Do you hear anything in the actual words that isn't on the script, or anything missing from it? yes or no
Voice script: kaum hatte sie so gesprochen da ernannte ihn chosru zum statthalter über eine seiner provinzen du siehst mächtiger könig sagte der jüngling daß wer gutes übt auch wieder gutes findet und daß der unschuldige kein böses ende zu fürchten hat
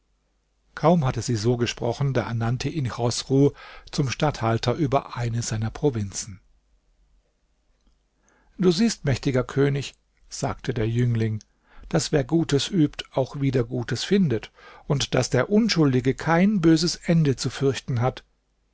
no